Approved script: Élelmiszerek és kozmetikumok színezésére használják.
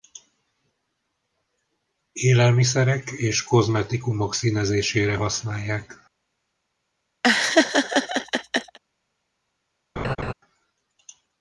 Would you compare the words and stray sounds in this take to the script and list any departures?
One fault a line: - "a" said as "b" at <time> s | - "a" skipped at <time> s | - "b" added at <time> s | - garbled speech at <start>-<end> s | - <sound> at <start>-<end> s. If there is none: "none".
- laugh at 7.2-8.8 s
- laugh at 10.0-10.3 s